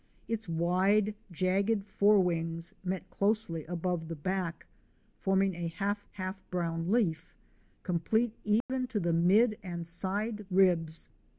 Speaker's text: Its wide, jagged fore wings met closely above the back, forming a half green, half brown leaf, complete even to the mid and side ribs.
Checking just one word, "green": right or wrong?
wrong